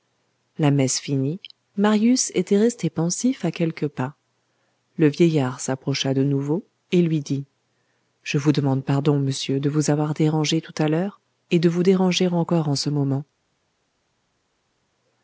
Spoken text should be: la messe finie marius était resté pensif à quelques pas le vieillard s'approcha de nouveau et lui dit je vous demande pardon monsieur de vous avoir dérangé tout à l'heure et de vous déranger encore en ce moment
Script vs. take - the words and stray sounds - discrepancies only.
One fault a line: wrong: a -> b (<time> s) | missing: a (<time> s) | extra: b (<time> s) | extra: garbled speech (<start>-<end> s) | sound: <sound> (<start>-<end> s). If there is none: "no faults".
no faults